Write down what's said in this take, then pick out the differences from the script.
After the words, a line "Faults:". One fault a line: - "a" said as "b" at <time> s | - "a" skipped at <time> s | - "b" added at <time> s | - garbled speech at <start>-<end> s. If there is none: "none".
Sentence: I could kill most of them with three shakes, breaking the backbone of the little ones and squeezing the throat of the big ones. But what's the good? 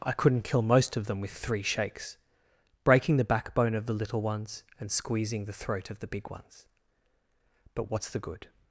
I couldn't kill most of them with three shakes, breaking the backbone of the little ones and squeezing the throat of the big ones. But what's the good?
Faults:
- "could" said as "couldn't" at 0.1 s